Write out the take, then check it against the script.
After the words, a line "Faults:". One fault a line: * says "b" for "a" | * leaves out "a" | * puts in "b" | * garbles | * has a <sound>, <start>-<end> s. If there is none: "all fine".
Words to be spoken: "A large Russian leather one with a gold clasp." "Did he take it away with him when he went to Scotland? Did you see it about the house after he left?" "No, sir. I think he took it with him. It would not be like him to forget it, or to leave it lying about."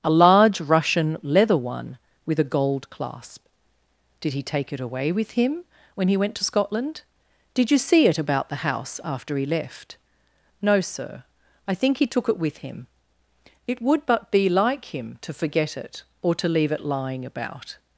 "A large Russian leather one with a gold clasp." "Did he take it away with him when he went to Scotland? Did you see it about the house after he left?" "No, sir. I think he took it with him. It would but be like him to forget it, or to leave it lying about."
Faults:
* says "but" for "not"